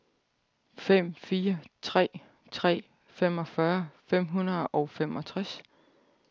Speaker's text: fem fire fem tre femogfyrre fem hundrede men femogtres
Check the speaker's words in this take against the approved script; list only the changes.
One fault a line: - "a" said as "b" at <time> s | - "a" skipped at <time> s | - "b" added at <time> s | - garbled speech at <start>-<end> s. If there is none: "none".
- "fem" said as "tre" at 1.8 s
- "men" said as "og" at 4.7 s